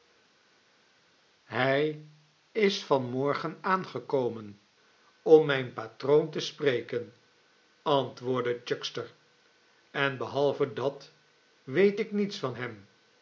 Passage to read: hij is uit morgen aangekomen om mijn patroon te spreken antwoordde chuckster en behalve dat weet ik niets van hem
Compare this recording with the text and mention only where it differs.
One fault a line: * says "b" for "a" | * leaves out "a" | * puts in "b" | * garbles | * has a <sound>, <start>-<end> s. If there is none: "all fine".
* says "van" for "uit"